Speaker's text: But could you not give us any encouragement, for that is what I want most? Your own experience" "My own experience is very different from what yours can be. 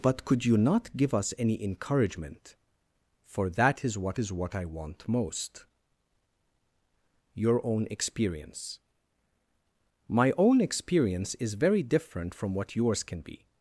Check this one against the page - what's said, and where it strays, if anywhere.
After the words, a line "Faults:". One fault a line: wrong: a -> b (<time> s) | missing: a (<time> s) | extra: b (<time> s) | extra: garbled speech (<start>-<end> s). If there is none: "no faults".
But could you not give us any encouragement, for that is what is what I want most? Your own experience" "My own experience is very different from what yours can be.
Faults:
extra: is what (4.2 s)